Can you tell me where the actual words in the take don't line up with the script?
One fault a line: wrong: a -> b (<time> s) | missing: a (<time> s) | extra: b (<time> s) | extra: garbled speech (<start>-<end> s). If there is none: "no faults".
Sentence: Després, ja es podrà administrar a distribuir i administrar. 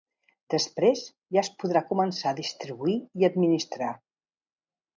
wrong: administrar -> començar (1.9 s)